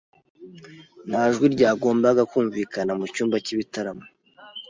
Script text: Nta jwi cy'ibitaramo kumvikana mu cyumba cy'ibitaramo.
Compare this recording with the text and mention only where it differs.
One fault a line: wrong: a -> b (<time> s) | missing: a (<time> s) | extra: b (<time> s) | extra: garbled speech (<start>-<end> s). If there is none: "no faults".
wrong: cy'ibitaramo -> ryagombaga (1.6 s)